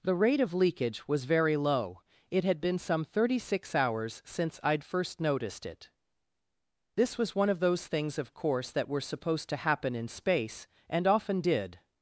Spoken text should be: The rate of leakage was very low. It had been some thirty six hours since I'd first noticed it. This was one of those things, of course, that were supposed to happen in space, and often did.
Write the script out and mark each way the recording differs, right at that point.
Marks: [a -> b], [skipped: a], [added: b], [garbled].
The rate of leakage was very low. It had been some thirty six hours since I'd first noticed it. This was one of those things, of course, that were supposed to happen in space, and often did.